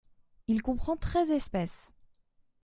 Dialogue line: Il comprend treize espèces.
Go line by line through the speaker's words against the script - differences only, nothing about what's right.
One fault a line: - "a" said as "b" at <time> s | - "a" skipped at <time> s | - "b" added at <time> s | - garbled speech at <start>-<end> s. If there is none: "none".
none